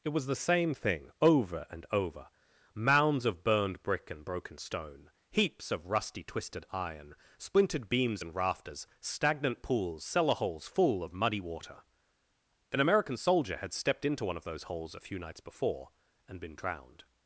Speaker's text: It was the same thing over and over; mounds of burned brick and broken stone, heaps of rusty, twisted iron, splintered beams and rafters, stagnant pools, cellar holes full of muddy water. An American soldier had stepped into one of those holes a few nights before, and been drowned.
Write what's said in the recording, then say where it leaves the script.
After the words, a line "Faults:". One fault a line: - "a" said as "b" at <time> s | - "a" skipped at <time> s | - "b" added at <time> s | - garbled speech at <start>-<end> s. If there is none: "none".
It was the same thing over and over; mounds of burned brick and broken stone, heaps of rusty, twisted iron, splintered beams and rafters, stagnant pools, cellar holes full of muddy water. An American soldier had stepped into one of those holes a few nights before, and been drowned.
Faults:
none